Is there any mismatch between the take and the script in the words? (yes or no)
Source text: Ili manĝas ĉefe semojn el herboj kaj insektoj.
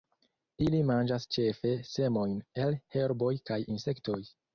no